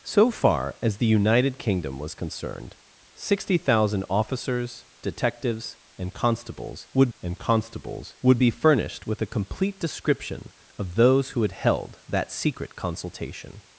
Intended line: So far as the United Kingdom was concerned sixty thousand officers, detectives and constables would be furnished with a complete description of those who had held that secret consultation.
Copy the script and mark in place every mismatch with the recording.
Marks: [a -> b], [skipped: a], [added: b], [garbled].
So far as the United Kingdom was concerned sixty thousand officers, detectives and constables would [added: and constables would] be furnished with a complete description of those who had held that secret consultation.